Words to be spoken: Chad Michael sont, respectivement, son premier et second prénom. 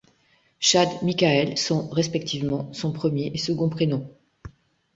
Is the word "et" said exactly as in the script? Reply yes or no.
yes